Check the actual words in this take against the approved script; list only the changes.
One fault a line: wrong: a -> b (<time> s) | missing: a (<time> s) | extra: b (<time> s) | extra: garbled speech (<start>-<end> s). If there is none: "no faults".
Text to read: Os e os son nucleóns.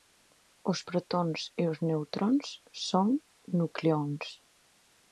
extra: protóns (0.9 s)
extra: neutróns (1.9 s)